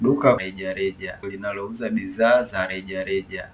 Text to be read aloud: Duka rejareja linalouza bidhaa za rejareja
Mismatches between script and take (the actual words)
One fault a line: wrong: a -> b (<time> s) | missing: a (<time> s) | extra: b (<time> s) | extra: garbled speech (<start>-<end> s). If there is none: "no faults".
no faults